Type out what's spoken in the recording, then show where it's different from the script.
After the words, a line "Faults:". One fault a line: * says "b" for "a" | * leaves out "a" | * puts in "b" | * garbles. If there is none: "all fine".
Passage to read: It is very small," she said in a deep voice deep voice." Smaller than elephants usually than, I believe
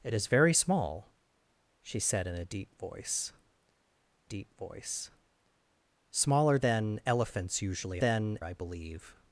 It is very small," she said in a deep voice deep voice." Smaller than elephants usually than, I believe
Faults:
all fine